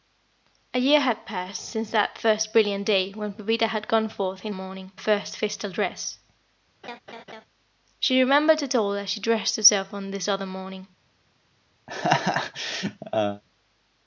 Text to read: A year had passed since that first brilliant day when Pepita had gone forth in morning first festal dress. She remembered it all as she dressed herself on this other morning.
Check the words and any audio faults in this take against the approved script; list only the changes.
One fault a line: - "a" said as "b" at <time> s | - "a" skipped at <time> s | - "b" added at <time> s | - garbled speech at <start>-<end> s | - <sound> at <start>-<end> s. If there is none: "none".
- laugh at 6.8-7.5 s
- laugh at 11.9-13.4 s